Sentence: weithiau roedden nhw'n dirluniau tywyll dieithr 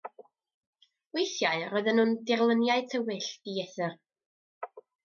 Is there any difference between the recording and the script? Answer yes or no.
no